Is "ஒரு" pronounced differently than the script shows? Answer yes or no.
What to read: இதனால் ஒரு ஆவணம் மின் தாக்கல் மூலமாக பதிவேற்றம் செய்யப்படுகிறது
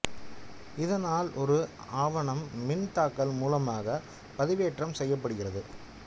no